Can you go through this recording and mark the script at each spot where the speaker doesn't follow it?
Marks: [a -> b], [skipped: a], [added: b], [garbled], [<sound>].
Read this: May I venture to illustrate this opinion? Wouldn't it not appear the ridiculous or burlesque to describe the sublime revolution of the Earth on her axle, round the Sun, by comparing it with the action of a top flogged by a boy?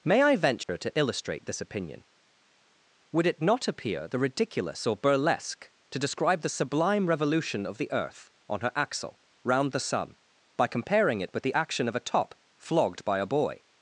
May I venture [dropout] to illustrate this opinion? [Wouldn't -> Would] it not appear the ridiculous or burlesque to describe the sublime revolution of the Earth on her axle, round the Sun, by comparing it with the action of a top flogged by a boy?